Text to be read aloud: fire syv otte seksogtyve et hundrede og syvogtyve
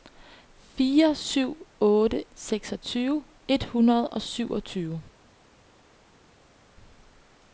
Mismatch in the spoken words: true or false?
false